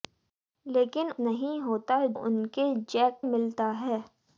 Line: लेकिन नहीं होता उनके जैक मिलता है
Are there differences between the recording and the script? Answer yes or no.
no